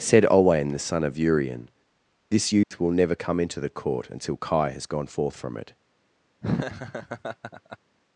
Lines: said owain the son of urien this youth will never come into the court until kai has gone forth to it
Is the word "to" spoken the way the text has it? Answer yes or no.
no